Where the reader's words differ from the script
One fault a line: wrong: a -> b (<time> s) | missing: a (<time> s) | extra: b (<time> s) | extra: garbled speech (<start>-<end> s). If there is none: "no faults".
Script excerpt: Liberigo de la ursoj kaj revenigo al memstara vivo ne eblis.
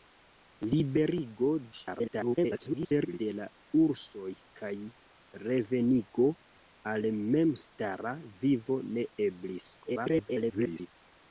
extra: garbled speech (1.7-3.2 s)
extra: garbled speech (9.8-10.9 s)